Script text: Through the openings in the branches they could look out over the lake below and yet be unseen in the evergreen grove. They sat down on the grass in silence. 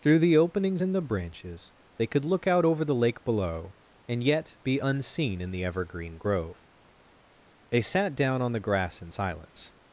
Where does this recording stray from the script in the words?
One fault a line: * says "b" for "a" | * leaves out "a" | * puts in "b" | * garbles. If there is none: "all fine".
all fine